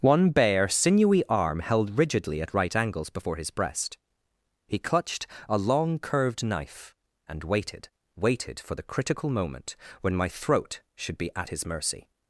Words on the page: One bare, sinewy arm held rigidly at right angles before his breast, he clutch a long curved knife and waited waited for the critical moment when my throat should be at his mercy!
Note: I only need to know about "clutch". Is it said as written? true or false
false